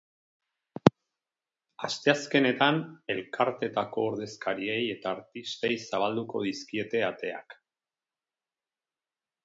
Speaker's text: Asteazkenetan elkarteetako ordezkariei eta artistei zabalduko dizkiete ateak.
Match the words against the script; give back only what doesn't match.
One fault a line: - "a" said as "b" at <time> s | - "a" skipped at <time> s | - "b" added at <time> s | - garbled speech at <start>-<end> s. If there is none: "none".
none